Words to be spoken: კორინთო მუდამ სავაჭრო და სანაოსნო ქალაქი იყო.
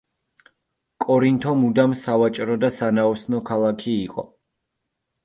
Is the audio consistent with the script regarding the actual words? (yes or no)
yes